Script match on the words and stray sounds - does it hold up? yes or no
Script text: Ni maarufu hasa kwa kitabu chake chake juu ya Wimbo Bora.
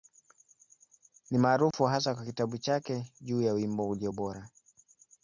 no